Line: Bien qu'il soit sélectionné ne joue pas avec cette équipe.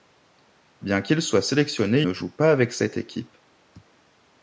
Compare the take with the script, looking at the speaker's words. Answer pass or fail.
pass